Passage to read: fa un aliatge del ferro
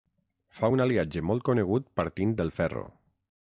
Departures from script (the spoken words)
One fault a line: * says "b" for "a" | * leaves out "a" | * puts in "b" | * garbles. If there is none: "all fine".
* puts in "molt conegut partint"